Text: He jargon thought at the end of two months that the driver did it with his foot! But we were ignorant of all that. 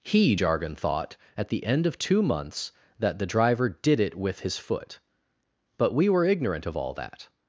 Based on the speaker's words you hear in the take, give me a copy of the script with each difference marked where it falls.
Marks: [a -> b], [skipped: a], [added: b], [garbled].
He jargon thought at the end of two months that the driver did it with his foot! But we were ignorant of all that.